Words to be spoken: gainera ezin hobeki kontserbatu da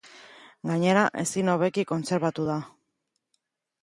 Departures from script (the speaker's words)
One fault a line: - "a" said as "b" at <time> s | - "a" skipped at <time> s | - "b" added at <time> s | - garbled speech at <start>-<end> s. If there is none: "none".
none